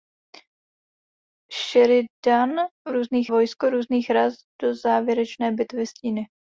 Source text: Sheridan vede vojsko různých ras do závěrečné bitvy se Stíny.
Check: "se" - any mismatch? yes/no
yes